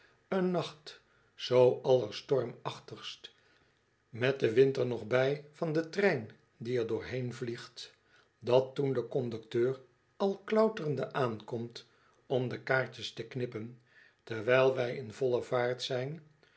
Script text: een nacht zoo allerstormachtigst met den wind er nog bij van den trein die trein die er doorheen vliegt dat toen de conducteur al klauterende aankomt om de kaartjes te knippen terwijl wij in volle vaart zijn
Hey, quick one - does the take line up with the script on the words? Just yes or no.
no